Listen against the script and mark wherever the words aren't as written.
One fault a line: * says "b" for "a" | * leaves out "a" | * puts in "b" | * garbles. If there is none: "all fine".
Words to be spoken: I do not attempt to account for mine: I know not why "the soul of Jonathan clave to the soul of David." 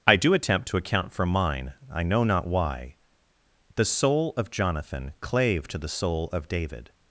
* leaves out "not"